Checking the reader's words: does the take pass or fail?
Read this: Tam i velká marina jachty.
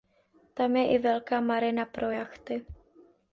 fail